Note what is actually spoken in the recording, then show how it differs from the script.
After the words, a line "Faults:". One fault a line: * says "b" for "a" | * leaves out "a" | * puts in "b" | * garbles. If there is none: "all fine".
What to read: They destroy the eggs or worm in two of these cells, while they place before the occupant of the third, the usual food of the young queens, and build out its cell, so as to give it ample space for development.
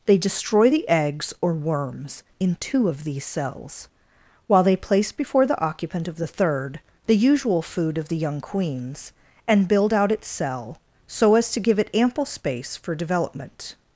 They destroy the eggs or worms in two of these cells, while they place before the occupant of the third, the usual food of the young queens, and build out its cell, so as to give it ample space for development.
Faults:
* says "worms" for "worm"